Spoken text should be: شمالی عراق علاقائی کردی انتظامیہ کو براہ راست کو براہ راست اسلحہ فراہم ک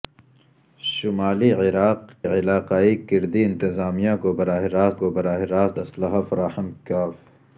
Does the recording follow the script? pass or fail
pass